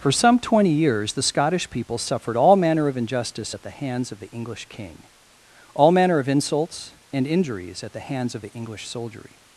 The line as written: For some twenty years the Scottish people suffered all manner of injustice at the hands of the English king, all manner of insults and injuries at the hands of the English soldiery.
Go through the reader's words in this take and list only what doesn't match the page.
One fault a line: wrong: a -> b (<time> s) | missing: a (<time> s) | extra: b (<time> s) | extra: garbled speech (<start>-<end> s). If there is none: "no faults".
no faults